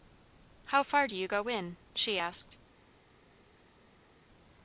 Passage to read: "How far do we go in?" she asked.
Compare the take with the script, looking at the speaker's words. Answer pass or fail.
fail